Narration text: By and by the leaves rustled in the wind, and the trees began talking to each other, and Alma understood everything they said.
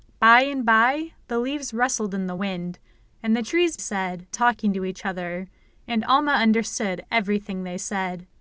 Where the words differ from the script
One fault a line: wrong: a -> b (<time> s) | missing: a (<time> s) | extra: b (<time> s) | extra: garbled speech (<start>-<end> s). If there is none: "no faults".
wrong: began -> said (3.8 s)